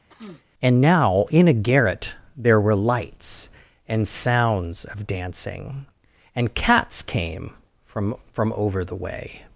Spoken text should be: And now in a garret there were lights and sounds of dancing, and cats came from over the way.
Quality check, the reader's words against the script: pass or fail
fail